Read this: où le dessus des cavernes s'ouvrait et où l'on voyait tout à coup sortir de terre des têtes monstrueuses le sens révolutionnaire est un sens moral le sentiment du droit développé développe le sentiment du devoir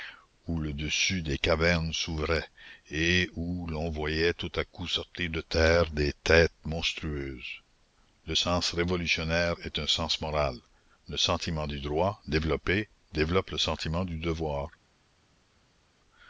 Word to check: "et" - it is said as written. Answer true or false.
true